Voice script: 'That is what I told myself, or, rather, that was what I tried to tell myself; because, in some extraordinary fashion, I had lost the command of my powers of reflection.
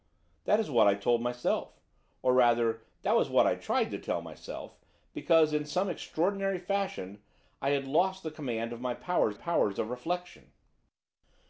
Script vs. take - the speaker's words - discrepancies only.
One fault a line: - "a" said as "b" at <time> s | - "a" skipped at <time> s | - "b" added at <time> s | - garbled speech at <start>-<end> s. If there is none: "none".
- "powers" added at 9.3 s